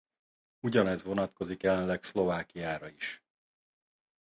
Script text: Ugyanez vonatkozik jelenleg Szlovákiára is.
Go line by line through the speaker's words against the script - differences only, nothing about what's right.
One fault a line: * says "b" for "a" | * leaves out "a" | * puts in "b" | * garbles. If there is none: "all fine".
all fine